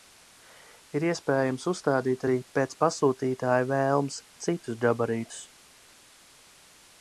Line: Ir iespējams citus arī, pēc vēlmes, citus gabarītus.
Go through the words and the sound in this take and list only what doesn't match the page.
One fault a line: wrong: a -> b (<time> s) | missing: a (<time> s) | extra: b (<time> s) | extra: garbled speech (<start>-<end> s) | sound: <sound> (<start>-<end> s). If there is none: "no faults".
wrong: citus -> uzstādīt (1.7 s)
extra: pasūtītāja (2.8 s)